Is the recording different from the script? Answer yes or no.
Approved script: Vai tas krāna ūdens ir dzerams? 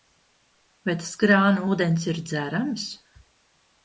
no